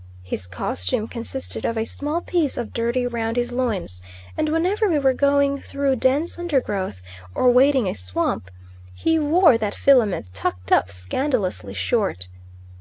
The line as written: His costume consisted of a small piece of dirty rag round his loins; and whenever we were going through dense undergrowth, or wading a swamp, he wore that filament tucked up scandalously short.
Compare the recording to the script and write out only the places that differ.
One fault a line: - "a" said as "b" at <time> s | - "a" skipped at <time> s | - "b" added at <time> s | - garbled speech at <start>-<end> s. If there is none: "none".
- "rag" skipped at 3.0 s